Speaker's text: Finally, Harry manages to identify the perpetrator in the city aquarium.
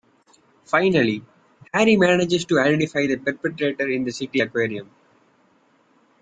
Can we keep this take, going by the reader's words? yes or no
yes